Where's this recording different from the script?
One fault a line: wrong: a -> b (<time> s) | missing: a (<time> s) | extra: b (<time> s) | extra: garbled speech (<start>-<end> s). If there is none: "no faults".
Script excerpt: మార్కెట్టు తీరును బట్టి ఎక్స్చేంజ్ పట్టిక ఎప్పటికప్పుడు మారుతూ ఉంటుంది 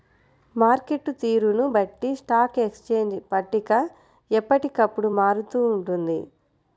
extra: స్టాక్ (2.2 s)